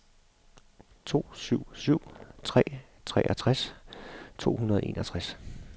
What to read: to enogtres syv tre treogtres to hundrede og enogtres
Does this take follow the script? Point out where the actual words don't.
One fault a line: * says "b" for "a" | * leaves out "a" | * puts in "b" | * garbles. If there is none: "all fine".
* says "syv" for "enogtres"